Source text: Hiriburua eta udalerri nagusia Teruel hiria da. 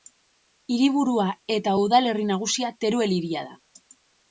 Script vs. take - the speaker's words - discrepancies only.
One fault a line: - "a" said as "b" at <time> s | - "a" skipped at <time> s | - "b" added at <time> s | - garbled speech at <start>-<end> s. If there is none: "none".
none